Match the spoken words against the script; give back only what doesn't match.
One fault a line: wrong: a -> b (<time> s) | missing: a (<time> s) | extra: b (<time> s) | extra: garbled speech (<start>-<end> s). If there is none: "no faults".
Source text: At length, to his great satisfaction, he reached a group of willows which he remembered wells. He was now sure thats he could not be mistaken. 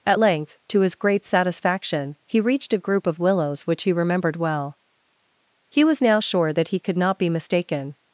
wrong: wells -> well (4.4 s)
wrong: thats -> that (6.5 s)